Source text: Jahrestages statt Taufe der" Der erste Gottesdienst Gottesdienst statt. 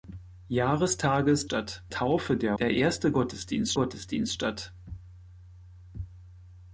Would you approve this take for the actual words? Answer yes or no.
yes